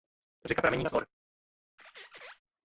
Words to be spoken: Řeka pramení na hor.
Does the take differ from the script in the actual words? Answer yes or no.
no